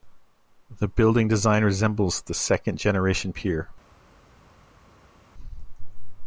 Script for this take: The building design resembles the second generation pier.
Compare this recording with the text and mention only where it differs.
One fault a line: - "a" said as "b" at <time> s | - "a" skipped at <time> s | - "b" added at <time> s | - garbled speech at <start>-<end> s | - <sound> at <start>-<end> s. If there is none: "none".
none